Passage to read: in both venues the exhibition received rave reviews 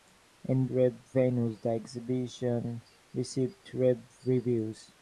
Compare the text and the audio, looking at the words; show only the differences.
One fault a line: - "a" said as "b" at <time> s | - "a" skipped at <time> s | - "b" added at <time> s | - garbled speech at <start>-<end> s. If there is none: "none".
- "both" said as "rave" at 0.7 s